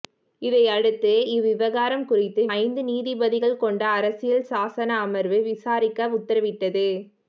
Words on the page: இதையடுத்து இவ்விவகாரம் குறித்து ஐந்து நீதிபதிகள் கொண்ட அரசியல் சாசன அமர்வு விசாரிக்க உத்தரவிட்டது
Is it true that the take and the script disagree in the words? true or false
false